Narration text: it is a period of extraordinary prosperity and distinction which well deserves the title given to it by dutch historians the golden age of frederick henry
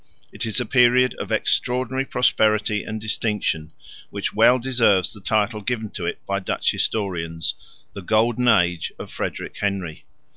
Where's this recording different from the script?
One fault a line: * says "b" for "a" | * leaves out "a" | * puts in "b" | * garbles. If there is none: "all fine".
all fine